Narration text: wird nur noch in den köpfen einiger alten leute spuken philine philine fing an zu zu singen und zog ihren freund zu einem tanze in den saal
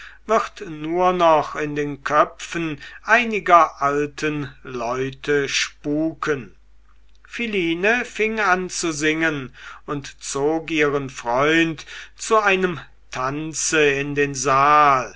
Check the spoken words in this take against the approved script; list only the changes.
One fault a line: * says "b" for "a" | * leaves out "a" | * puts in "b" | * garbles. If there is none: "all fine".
* leaves out "philine"
* leaves out "zu"